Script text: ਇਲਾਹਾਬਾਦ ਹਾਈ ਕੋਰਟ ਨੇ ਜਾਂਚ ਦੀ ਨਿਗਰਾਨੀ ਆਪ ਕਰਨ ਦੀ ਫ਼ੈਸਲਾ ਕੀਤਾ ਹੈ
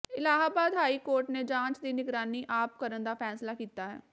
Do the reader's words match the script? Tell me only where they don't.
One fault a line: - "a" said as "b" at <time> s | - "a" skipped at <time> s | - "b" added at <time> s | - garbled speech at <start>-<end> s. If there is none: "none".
- "ਦੀ" said as "ਦਾ" at 3.0 s